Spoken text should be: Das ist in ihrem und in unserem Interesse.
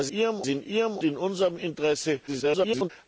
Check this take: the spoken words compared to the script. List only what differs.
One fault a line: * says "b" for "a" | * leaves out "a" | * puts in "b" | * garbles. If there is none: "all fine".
* says "ihrem" for "ist"
* leaves out "und"
* garbles